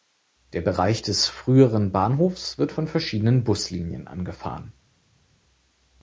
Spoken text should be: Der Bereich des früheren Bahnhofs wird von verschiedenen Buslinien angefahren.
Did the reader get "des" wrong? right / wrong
right